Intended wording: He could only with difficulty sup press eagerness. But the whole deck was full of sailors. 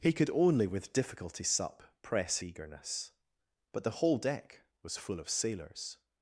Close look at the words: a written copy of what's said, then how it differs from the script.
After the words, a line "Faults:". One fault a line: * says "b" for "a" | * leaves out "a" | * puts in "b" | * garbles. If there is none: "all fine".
He could only with difficulty sup press eagerness. But the whole deck was full of sailors.
Faults:
all fine